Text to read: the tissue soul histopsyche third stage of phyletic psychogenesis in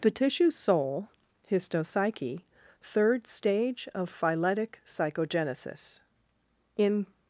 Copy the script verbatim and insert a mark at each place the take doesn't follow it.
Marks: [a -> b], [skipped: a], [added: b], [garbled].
the tissue soul histopsyche third stage of phyletic psychogenesis in